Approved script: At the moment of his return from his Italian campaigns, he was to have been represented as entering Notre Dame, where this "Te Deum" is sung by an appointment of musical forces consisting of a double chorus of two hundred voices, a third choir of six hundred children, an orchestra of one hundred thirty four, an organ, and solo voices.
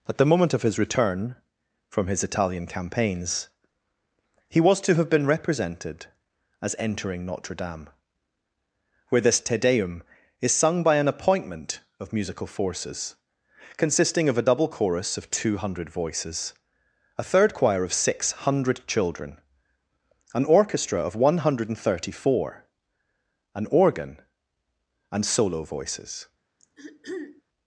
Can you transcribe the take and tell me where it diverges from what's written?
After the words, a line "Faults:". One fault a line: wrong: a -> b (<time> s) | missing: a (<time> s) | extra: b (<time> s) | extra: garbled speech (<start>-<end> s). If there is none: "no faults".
At the moment of his return from his Italian campaigns, he was to have been represented as entering Notre Dame, where this "Te Deum" is sung by an appointment of musical forces consisting of a double chorus of two hundred voices, a third choir of six hundred children, an orchestra of one hundred thirty four, an organ, and solo voices.
Faults:
no faults